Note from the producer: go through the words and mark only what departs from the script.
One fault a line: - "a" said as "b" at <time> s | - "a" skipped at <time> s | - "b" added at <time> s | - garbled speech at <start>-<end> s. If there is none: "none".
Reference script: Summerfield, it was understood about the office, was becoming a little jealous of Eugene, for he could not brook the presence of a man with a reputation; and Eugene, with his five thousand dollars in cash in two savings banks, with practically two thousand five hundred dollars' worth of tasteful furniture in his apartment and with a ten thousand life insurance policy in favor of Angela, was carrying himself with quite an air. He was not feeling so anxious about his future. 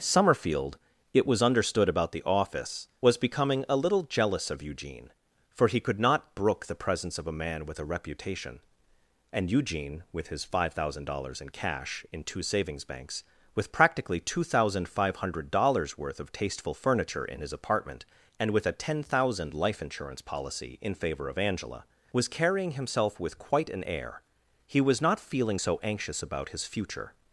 none